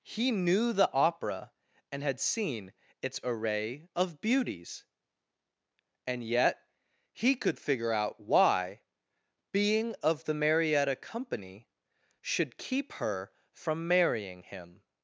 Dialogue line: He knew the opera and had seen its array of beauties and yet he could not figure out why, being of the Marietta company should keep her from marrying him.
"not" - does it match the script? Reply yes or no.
no